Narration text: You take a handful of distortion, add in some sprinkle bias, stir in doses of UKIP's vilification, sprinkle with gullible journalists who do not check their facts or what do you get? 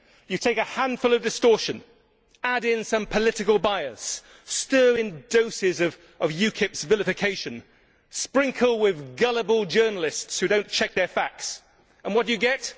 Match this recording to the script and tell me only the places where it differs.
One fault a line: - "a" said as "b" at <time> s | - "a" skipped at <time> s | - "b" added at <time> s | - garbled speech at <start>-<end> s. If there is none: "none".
- "sprinkle" said as "political" at 3.0 s
- "or" said as "and" at 12.0 s